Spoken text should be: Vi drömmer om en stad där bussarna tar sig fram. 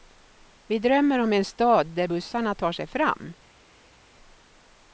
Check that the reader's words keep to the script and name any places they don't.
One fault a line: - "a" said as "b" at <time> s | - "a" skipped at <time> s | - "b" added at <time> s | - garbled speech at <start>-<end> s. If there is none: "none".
none